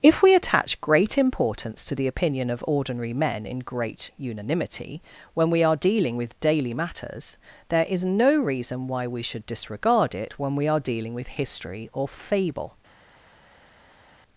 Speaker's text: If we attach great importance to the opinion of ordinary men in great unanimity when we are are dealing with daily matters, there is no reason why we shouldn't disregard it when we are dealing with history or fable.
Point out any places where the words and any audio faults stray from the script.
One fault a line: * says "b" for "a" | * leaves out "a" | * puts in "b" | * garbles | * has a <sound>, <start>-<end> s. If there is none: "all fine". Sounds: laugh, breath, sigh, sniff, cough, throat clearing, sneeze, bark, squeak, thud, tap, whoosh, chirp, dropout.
* leaves out "are"
* says "should" for "shouldn't"